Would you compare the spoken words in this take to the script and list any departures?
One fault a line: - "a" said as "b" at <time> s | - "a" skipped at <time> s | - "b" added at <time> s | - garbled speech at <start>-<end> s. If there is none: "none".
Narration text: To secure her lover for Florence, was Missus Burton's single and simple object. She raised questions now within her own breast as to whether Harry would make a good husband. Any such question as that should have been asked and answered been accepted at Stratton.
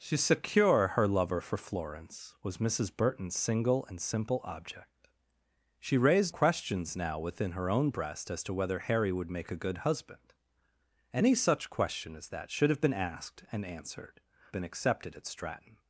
none